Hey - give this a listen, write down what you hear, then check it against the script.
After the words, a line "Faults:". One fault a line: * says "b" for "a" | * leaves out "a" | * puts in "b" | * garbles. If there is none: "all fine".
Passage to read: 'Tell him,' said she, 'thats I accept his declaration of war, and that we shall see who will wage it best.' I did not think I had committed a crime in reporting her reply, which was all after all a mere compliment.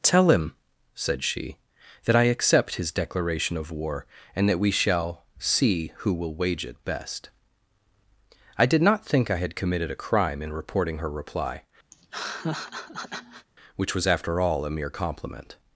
'Tell him,' said she, 'that I accept his declaration of war, and that we shall see who will wage it best.' I did not think I had committed a crime in reporting her reply, which was after all a mere compliment.
Faults:
* says "that" for "thats"
* leaves out "all"